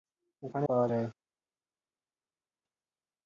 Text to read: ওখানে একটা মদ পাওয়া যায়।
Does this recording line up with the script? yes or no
no